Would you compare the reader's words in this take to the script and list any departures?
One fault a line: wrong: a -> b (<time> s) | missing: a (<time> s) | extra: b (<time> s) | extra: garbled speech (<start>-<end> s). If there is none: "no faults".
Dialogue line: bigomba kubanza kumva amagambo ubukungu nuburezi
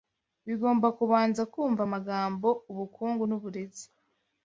no faults